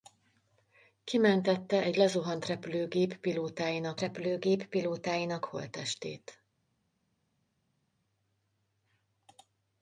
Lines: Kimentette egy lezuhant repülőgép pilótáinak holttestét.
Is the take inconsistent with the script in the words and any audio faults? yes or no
yes